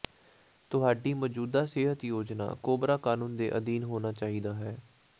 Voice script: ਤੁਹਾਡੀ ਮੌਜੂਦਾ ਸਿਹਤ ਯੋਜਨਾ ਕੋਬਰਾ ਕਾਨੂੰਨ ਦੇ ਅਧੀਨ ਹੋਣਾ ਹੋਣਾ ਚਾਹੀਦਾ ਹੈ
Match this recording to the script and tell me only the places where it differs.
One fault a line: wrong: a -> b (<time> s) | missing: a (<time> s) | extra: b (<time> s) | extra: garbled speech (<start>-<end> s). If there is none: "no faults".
missing: ਹੋਣਾ (4.1 s)